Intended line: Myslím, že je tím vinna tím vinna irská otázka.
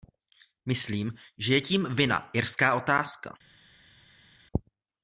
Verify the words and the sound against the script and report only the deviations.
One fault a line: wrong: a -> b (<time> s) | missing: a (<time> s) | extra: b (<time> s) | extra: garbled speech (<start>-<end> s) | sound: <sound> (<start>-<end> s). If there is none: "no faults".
missing: tím vinna (2.3 s)